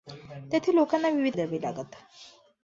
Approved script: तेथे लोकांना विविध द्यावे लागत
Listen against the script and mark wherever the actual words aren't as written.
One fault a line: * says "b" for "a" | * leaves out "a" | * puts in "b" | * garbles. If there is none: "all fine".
all fine